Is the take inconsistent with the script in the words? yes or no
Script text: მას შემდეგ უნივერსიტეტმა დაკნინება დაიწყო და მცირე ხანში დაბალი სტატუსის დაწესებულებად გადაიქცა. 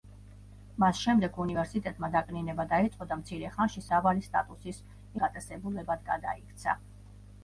no